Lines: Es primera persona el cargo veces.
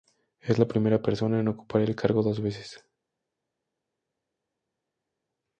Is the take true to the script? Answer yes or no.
no